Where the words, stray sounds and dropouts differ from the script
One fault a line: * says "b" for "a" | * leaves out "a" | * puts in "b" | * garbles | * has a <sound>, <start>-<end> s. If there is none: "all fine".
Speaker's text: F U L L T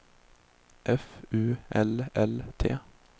all fine